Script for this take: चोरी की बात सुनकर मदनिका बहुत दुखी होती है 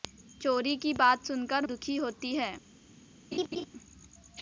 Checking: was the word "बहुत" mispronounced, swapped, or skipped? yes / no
yes